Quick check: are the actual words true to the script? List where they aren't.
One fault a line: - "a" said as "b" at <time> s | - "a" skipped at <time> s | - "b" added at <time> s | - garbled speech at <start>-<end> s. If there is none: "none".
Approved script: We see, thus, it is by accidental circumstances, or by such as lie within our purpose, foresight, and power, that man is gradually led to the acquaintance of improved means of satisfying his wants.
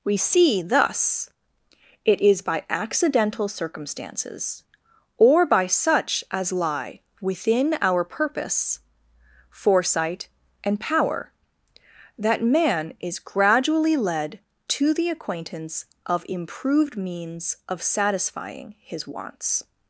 none